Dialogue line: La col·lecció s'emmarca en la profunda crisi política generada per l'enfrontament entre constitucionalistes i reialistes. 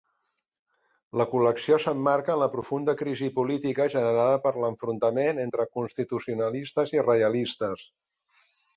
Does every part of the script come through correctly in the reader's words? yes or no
yes